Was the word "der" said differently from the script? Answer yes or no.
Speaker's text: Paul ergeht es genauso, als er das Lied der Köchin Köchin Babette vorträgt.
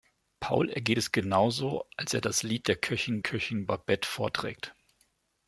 no